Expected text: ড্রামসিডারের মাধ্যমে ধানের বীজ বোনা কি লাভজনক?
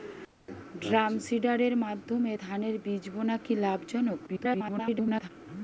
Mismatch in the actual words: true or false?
true